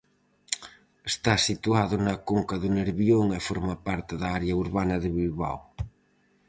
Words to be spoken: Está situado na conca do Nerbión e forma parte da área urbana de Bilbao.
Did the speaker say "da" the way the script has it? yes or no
yes